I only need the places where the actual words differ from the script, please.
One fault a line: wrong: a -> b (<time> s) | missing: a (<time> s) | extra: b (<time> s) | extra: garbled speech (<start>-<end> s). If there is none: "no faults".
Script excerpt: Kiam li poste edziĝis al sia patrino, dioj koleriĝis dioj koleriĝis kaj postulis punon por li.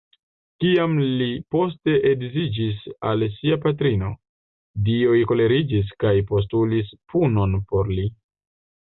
missing: dioj koleriĝis (5.9 s)